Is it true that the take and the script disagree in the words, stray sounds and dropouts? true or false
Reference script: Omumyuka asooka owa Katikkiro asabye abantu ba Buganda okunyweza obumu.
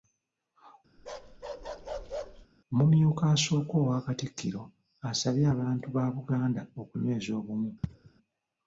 true